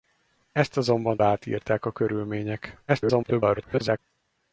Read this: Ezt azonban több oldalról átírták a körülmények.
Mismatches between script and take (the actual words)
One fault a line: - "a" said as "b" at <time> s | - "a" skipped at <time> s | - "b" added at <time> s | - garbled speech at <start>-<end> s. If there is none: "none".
- "több oldalról" skipped at 1.2 s
- garbled speech at 2.9-4.0 s